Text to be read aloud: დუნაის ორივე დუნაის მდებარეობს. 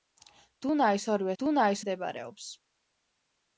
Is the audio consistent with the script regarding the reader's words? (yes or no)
yes